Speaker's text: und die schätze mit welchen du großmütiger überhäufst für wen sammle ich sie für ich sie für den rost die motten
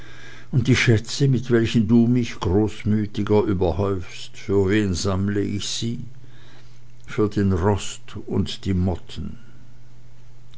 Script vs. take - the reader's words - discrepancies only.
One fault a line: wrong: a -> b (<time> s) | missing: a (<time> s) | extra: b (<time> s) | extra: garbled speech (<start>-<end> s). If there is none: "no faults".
extra: mich (2.1 s)
missing: ich sie für (7.3 s)
extra: und (8.3 s)